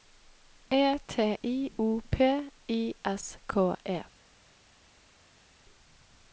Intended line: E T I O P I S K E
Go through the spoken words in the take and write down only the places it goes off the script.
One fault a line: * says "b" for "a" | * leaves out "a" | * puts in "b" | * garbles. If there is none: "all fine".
all fine